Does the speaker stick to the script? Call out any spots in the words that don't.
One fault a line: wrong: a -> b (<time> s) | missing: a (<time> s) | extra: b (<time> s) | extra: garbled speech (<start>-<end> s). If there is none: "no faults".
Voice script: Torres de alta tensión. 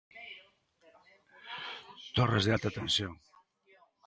no faults